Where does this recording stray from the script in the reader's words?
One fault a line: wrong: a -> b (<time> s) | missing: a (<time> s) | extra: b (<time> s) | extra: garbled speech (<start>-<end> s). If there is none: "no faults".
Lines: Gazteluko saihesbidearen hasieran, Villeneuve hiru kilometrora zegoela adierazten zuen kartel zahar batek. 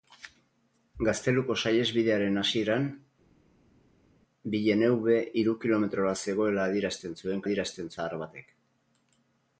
wrong: kartel -> adierazten (7.5 s)